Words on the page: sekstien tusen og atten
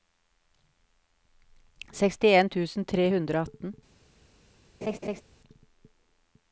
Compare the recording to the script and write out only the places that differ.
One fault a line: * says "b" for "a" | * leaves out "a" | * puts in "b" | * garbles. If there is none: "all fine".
* puts in "tre hundre"